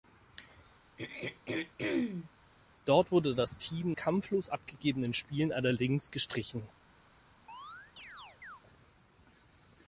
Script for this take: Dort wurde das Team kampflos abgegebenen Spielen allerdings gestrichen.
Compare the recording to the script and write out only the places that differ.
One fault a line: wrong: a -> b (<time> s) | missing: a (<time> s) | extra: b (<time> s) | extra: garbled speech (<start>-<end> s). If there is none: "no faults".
no faults